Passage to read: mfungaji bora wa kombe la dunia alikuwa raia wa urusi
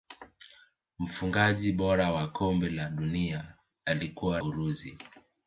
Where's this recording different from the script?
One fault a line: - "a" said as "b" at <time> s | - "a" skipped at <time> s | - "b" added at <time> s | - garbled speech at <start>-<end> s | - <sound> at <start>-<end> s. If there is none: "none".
- "raia wa" skipped at 4.4 s